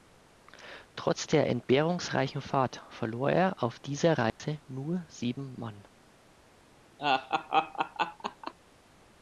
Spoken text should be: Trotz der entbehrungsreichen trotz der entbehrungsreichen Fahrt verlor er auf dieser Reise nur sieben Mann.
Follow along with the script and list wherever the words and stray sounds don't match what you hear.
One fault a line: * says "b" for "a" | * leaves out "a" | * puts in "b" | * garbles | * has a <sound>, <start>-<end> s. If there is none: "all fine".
* leaves out "trotz der entbehrungsreichen"
* has a dropout, 4.3-4.4 s
* has a laugh, 7.0-8.5 s